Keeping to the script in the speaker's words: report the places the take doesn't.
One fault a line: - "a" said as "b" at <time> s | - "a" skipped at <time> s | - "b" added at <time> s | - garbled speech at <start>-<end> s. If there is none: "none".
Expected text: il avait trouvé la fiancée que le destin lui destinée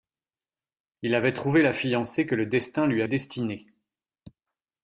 none